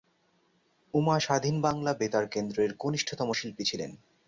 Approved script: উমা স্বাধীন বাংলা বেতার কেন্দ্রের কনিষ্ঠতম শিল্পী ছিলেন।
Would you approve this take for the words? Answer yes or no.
yes